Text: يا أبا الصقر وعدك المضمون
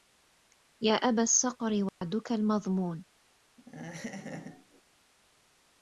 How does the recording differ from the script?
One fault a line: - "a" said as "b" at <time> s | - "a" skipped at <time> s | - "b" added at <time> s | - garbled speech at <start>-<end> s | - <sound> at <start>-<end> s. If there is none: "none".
- dropout at 1.9-2.0 s
- laugh at 3.6-4.8 s